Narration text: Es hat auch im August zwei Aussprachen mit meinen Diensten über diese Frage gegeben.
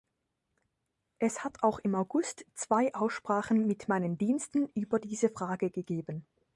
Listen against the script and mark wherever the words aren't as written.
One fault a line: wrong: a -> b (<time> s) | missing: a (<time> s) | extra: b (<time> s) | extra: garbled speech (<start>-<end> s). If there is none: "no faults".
no faults